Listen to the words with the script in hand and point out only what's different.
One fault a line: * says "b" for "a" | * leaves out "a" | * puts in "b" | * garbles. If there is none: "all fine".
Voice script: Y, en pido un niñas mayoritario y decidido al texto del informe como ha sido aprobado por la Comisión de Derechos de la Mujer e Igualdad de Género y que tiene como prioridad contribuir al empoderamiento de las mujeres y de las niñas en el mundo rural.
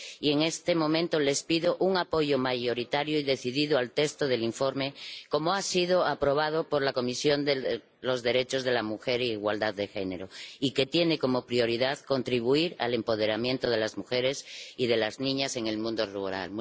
* puts in "este momento les"
* says "apoyo" for "niñas"